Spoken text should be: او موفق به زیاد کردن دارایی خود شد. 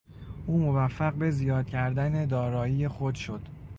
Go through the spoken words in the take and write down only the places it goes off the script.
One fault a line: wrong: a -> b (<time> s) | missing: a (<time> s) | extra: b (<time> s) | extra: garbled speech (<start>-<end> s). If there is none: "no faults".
no faults